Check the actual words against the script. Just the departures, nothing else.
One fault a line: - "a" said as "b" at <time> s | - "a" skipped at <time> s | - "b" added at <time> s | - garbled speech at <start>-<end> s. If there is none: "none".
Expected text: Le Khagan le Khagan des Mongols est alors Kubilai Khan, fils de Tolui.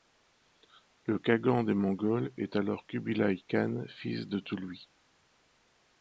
- "le Khagan" skipped at 1.6 s